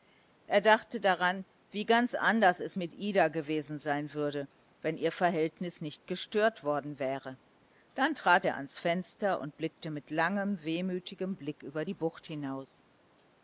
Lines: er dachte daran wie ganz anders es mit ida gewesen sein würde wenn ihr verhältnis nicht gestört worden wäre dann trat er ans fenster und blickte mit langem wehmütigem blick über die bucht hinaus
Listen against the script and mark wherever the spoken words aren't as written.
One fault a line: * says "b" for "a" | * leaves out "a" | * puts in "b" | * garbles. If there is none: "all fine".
all fine